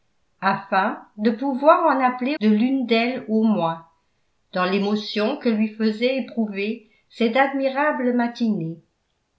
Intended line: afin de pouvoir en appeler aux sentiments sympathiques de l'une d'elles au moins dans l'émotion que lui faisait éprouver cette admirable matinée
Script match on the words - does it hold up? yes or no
no